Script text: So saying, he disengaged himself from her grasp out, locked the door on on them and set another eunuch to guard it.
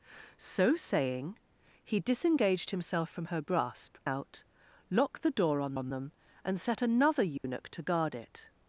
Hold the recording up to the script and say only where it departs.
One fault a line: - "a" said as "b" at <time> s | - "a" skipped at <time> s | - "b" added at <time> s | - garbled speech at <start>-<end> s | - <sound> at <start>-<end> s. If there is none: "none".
- dropout at 7.4-7.4 s